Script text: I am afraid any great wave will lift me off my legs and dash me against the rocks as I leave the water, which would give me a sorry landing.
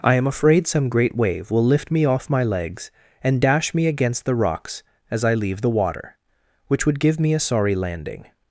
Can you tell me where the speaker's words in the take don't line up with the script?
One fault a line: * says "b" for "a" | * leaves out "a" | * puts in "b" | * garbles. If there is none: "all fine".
* says "some" for "any"